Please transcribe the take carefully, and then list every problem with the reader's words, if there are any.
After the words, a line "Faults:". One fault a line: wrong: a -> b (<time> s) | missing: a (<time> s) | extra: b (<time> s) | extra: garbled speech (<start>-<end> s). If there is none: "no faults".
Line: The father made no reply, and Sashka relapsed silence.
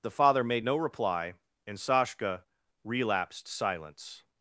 The father made no reply, and Sashka relapsed silence.
Faults:
no faults